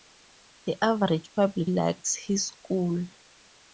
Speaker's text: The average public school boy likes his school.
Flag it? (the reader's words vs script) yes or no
yes